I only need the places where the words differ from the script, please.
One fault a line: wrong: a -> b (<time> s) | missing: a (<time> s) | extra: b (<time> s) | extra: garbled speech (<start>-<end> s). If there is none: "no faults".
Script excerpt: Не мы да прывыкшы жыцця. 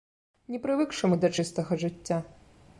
extra: прывыкшы (0.6 s)
wrong: прывыкшы -> чыстага (1.4 s)